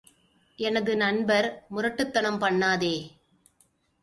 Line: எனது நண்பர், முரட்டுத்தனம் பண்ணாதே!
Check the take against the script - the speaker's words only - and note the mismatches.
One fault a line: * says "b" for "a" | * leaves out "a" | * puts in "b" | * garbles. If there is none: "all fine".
all fine